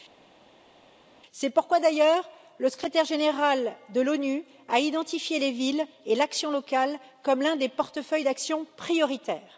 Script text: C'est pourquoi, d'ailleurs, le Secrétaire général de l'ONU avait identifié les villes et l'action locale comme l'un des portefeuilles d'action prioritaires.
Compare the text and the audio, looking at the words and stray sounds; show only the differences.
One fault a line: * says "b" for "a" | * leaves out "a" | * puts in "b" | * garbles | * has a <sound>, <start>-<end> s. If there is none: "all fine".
* says "a" for "avait"